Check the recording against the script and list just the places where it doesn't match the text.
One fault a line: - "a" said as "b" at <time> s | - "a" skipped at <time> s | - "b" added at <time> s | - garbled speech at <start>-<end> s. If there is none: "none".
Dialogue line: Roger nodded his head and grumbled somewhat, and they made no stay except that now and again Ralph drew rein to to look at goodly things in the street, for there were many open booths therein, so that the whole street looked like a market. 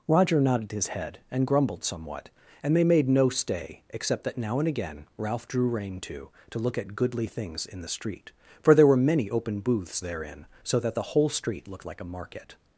none